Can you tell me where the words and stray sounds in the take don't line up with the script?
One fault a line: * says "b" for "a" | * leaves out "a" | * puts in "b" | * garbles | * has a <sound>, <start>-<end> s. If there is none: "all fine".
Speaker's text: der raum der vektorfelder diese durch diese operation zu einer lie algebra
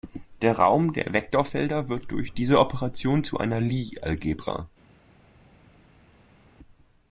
* says "wird" for "diese"